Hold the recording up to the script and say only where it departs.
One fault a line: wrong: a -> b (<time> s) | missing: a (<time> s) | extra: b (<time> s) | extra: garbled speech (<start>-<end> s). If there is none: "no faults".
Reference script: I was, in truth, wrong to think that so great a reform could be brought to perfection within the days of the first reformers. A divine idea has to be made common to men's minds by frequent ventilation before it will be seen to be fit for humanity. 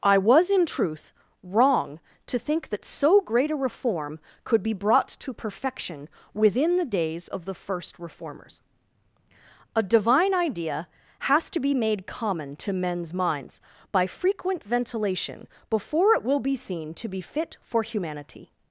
no faults